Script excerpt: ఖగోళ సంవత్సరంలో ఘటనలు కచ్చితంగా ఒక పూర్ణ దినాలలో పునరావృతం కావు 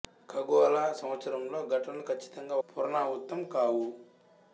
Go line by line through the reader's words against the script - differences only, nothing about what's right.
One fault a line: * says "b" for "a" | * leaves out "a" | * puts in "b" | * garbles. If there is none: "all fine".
* leaves out "ఒక పూర్ణ దినాలలో"